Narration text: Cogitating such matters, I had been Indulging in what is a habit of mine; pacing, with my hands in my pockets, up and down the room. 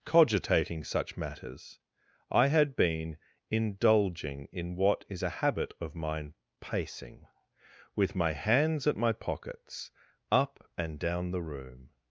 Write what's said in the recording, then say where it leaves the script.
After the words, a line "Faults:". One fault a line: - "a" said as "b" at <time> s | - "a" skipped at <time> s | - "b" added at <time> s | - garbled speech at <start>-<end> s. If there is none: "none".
Cogitating such matters, I had been Indulging in what is a habit of mine; pacing, with my hands at my pockets, up and down the room.
Faults:
- "in" said as "at" at 8.9 s